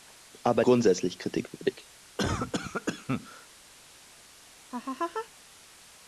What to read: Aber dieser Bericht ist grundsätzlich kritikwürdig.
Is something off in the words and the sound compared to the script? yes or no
yes